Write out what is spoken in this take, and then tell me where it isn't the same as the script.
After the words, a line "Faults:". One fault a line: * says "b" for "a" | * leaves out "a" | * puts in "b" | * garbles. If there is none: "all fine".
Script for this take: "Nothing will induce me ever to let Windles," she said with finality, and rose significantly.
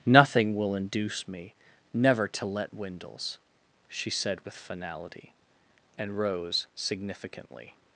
"Nothing will induce me never to let Windles," she said with finality, and rose significantly.
Faults:
* says "never" for "ever"